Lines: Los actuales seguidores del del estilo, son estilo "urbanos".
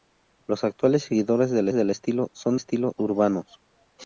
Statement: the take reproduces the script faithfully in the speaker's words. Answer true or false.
true